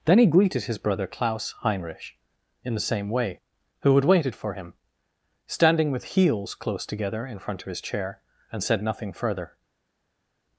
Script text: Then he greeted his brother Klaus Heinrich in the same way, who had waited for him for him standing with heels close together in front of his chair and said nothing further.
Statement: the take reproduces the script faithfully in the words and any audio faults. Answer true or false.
false